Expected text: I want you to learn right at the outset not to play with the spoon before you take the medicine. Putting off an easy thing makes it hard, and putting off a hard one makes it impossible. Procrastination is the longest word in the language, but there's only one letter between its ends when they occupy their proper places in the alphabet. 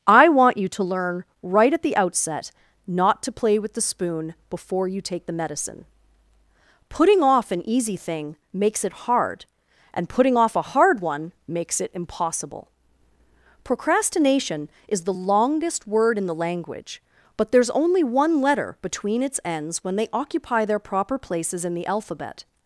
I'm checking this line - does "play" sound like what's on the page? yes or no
yes